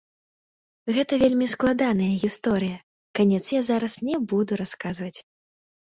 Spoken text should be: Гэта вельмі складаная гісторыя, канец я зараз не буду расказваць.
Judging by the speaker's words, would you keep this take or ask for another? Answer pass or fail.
pass